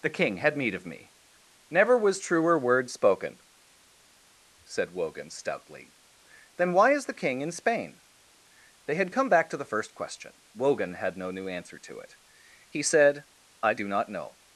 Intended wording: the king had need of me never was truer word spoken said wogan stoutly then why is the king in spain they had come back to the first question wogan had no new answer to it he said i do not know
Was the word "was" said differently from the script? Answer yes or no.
no